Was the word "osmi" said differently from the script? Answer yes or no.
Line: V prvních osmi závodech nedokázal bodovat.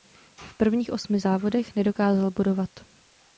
no